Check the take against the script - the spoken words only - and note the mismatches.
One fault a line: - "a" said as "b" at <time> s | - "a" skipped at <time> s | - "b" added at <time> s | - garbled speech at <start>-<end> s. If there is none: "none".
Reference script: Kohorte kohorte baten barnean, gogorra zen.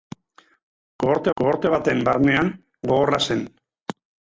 none